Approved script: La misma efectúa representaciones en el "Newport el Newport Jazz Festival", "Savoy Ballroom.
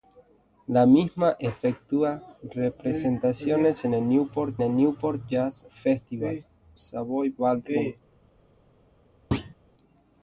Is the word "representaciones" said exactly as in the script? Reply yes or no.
yes